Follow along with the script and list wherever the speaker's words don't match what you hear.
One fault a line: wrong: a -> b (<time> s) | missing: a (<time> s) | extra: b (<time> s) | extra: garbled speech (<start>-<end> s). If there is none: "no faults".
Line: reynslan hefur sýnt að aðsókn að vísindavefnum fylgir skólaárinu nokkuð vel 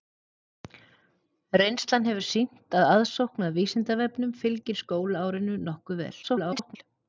extra: garbled speech (6.2-6.8 s)